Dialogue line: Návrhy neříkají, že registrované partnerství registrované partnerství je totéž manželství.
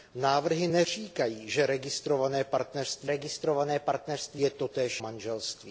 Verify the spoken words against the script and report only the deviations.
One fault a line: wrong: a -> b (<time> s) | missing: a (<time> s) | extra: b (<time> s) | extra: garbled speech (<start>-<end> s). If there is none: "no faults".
no faults